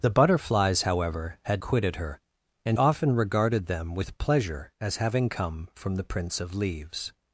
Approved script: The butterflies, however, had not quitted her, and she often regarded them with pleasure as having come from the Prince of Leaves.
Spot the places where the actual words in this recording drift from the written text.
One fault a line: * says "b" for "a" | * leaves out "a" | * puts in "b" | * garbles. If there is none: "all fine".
* leaves out "not"
* leaves out "she"